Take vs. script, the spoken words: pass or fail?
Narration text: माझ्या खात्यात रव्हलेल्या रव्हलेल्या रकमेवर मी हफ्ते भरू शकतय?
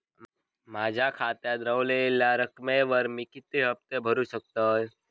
fail